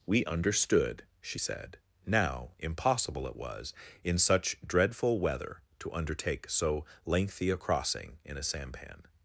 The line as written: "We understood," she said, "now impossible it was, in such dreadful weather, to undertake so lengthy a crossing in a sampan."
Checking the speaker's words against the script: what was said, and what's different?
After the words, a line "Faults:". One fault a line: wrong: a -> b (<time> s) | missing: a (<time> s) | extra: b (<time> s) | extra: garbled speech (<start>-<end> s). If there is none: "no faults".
"We understood," she said, "now impossible it was, in such dreadful weather, to undertake so lengthy a crossing in a sampan."
Faults:
no faults